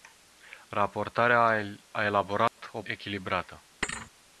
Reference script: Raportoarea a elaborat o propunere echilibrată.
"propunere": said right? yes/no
no